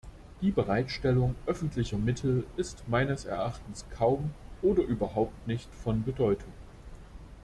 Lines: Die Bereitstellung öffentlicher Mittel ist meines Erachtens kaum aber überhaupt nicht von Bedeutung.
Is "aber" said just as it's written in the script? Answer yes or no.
no